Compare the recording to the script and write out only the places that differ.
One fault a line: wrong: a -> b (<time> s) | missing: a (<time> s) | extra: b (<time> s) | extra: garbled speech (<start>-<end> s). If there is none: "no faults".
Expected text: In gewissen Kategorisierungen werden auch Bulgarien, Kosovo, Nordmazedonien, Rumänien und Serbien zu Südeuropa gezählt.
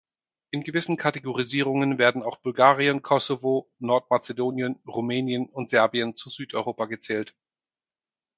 no faults